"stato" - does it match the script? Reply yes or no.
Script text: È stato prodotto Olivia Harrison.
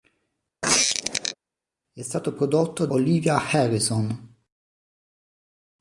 yes